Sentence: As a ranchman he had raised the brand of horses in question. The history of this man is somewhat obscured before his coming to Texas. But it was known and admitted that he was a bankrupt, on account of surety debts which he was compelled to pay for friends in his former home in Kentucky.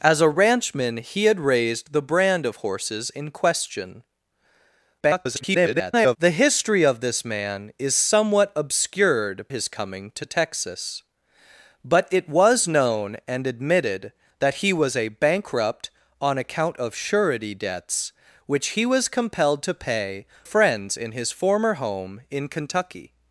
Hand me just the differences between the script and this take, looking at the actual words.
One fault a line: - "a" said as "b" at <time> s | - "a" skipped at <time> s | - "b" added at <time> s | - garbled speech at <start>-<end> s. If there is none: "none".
- garbled speech at 5.0-6.2 s
- "before" skipped at 9.4 s
- "for" skipped at 20.2 s